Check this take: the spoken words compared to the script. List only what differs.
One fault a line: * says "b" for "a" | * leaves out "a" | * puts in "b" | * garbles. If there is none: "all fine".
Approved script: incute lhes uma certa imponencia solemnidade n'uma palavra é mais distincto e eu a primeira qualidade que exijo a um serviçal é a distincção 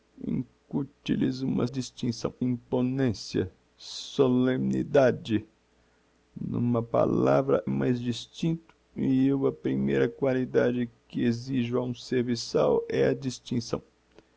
* says "distincção" for "certa"
* leaves out "é"